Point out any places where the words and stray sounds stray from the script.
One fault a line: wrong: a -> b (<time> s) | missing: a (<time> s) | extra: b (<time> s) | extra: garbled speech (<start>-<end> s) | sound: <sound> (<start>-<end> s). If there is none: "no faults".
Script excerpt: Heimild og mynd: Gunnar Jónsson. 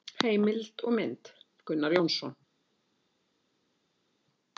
no faults